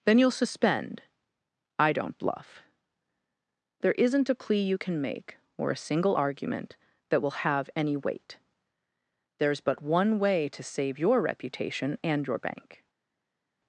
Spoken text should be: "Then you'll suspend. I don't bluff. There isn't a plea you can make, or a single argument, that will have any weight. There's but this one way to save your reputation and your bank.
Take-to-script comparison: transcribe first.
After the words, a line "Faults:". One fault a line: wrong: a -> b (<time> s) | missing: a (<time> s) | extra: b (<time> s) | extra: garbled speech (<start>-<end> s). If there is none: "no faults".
"Then you'll suspend. I don't bluff. There isn't a plea you can make, or a single argument, that will have any weight. There's but one way to save your reputation and your bank.
Faults:
missing: this (9.8 s)